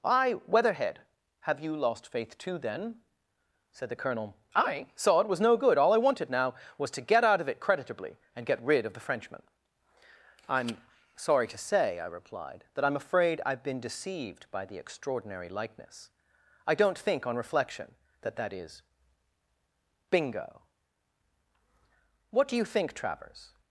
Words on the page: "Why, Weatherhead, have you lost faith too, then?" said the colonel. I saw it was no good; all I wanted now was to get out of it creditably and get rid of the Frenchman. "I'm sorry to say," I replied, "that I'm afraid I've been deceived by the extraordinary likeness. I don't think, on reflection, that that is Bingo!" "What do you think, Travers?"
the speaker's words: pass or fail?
pass